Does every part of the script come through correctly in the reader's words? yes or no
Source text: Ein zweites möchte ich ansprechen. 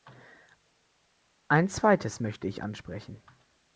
yes